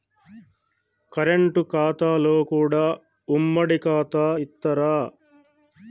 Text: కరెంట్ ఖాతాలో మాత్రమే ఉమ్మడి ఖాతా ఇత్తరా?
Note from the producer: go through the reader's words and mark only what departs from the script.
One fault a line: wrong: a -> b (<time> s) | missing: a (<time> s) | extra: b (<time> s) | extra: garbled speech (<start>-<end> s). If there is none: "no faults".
wrong: మాత్రమే -> కూడా (2.4 s)